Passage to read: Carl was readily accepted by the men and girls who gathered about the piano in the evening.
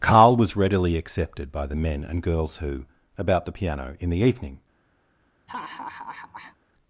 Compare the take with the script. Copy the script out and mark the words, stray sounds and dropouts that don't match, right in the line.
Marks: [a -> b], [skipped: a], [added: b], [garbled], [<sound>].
Carl was readily accepted by the men and girls who [skipped: gathered] about the piano in the evening. [laugh]